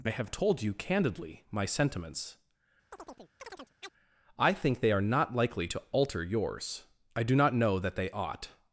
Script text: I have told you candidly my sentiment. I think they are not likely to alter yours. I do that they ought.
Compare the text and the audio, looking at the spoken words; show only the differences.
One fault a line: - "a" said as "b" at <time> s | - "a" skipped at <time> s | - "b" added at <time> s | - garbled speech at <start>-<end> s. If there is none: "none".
- "sentiment" said as "sentiments" at 1.6 s
- "not know" added at 7.4 s